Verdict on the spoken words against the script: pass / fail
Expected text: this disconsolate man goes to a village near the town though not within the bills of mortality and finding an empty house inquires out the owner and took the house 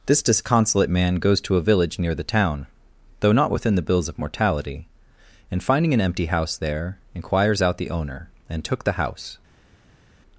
fail